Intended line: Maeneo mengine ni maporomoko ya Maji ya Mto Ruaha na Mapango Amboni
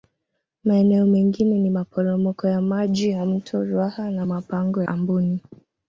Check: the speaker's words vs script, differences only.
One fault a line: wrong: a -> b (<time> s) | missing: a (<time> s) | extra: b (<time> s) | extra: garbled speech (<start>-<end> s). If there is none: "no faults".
no faults